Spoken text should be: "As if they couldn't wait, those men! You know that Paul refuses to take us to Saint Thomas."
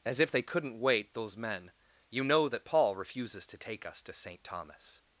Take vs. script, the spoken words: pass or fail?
pass